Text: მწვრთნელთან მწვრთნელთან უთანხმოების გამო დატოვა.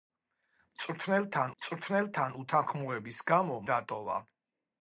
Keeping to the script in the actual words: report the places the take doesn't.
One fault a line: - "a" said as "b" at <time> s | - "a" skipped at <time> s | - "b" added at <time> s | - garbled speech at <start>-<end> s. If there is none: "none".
none